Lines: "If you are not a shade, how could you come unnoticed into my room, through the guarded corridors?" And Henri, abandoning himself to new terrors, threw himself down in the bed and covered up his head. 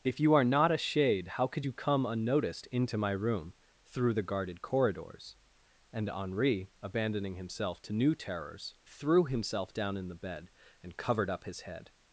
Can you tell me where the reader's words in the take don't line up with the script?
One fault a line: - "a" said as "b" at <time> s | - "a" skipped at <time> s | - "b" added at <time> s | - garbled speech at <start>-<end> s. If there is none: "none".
none